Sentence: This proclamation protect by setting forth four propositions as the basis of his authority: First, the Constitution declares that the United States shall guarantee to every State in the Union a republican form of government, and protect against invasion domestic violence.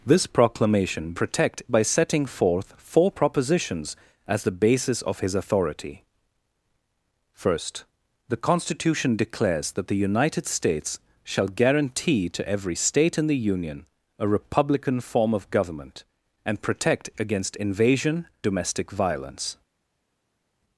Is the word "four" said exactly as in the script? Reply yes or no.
yes